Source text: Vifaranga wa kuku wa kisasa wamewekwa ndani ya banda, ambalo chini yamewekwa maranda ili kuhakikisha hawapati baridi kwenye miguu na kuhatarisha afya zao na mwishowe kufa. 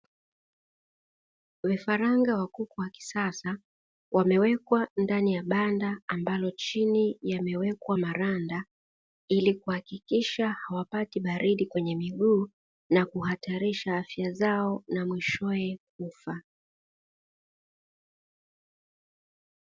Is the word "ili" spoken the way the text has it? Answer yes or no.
yes